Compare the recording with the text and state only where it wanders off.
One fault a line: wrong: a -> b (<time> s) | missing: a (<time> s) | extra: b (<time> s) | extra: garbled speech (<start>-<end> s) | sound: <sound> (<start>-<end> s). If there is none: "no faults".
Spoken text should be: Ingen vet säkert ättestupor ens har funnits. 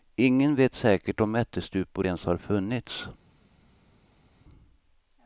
extra: om (1.2 s)